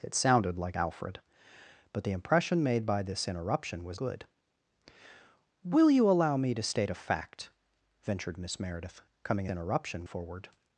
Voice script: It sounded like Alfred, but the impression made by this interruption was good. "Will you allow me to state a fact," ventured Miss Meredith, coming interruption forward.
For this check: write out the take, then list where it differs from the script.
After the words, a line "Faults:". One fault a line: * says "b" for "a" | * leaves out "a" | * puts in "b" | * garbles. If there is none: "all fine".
It sounded like Alfred, but the impression made by this interruption was good. "Will you allow me to state a fact," ventured Miss Meredith, coming interruption forward.
Faults:
all fine